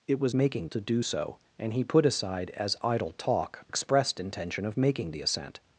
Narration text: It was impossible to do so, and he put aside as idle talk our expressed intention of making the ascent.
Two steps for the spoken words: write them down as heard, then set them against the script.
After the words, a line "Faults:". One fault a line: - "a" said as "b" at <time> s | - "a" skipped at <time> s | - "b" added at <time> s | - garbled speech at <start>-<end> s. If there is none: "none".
It was making to do so, and he put aside as idle talk expressed intention of making the ascent.
Faults:
- "impossible" said as "making" at 0.3 s
- "our" skipped at 3.6 s